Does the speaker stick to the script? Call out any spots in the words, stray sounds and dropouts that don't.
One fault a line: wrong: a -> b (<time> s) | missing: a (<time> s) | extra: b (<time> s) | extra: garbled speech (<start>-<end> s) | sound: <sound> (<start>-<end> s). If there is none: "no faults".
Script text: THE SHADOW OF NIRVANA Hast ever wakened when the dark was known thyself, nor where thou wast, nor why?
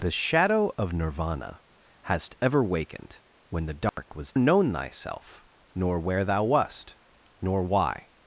sound: dropout (3.9-4.0 s)